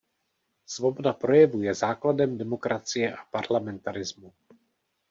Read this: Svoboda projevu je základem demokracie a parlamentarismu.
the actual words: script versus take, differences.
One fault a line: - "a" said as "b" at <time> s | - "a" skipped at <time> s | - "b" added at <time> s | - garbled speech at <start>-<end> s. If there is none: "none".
none